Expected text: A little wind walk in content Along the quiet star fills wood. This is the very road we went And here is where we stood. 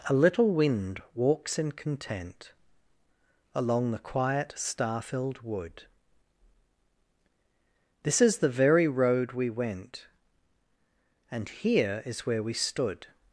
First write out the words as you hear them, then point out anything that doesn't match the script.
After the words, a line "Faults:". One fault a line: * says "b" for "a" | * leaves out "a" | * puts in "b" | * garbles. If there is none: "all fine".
A little wind walks in content Along the quiet star filled wood. This is the very road we went And here is where we stood.
Faults:
* says "walks" for "walk"
* says "filled" for "fills"